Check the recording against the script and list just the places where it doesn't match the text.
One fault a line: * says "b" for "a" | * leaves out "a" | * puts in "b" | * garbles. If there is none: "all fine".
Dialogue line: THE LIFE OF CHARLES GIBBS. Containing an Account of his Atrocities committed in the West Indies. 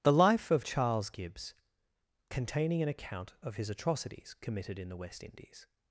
all fine